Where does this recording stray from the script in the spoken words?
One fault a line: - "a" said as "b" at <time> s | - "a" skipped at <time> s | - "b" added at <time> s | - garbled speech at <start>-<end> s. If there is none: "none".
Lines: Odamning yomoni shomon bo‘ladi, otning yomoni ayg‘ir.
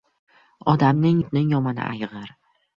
- "yomoni shomon bo‘ladi" skipped at 1.2 s